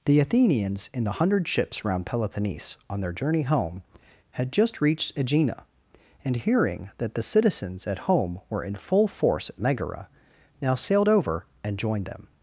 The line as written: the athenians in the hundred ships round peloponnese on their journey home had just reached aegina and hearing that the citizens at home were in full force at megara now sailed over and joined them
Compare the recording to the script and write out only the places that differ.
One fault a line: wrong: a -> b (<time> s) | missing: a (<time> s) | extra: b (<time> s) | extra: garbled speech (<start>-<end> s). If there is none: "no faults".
no faults